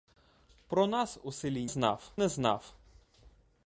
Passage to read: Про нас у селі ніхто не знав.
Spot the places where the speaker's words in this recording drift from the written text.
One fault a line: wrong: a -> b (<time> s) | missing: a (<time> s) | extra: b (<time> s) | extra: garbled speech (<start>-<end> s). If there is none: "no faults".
wrong: ніхто -> знав (1.7 s)